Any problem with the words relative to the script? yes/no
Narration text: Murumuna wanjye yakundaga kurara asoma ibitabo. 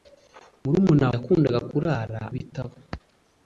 yes